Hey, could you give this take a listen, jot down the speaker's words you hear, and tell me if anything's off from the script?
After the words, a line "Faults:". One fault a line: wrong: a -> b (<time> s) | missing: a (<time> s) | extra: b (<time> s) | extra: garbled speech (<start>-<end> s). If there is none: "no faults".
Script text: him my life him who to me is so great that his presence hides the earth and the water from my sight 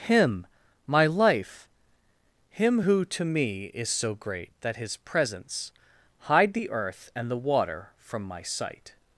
him my life him who to me is so great that his presence hide the earth and the water from my sight
Faults:
wrong: hides -> hide (6.2 s)